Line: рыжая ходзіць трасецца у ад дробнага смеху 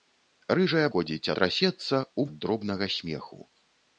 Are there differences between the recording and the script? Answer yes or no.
no